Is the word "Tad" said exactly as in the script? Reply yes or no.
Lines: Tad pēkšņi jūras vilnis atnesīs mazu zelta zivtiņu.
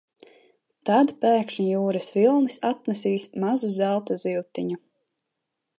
yes